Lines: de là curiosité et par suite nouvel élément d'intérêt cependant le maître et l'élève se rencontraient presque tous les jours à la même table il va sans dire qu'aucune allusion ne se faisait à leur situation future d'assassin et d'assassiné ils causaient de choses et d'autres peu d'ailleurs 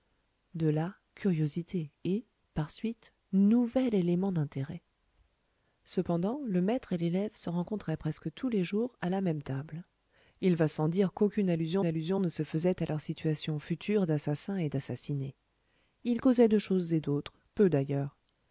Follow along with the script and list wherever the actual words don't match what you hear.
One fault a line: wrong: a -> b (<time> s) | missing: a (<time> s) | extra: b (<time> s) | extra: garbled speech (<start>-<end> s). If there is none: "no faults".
extra: allusion (11.8 s)